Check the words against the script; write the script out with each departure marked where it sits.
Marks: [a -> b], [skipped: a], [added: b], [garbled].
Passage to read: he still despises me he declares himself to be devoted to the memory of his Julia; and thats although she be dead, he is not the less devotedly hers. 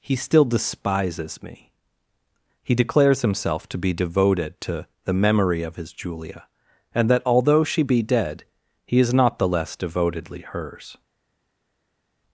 he still despises me he declares himself to be devoted to the memory of his Julia; and [thats -> that] although she be dead, he is not the less devotedly hers.